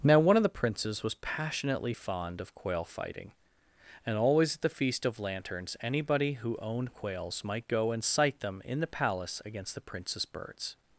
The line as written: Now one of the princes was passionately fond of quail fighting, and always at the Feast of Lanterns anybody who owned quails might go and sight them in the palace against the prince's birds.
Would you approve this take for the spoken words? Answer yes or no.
yes